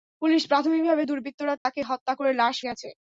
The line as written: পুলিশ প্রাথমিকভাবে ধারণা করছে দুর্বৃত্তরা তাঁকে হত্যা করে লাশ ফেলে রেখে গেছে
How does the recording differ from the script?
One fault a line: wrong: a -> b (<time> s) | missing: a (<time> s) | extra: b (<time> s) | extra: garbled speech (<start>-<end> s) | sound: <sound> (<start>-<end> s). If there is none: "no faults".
missing: ধারণা করছে (1.0 s)
sound: dropout (1.6-1.7 s)
missing: ফেলে রেখে (2.6 s)